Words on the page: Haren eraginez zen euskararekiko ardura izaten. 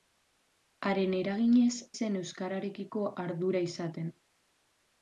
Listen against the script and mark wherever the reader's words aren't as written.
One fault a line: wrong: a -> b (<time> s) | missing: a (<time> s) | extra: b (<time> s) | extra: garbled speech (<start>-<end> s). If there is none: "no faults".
no faults